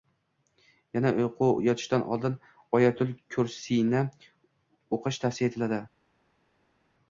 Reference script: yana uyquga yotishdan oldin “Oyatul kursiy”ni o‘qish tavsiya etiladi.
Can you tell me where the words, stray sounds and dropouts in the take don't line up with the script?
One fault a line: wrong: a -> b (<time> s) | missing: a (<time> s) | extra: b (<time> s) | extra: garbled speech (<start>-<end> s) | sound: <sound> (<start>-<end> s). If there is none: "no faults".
no faults